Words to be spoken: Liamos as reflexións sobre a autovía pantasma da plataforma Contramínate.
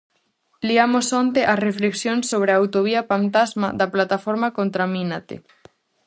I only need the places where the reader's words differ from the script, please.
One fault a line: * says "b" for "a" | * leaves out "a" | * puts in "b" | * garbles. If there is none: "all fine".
* puts in "onte"